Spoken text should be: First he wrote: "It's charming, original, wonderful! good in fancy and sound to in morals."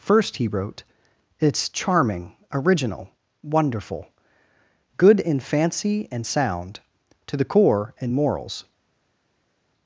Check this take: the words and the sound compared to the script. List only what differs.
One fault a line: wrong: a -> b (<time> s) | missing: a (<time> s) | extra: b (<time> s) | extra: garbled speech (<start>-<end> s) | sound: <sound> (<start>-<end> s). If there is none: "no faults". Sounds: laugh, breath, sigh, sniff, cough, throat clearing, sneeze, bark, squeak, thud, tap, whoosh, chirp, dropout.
extra: the core (7.4 s)